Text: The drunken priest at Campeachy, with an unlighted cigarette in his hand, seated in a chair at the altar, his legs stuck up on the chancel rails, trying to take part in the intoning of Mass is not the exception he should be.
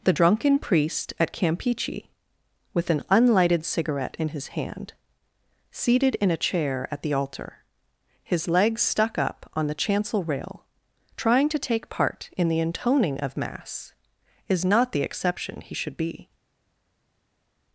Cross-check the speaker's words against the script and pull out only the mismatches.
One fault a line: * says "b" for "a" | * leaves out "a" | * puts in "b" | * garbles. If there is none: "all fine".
* says "rail" for "rails"